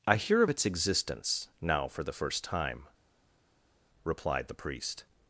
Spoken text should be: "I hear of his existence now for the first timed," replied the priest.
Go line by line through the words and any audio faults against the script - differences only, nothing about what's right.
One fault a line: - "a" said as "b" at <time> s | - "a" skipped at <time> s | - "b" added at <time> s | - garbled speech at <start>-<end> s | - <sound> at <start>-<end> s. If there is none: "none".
- "his" said as "its" at 0.5 s
- "timed" said as "time" at 2.4 s